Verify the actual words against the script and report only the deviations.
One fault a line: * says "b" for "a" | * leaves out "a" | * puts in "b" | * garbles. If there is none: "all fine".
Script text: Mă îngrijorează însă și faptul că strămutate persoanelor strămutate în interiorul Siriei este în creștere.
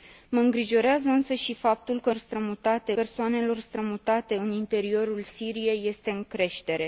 all fine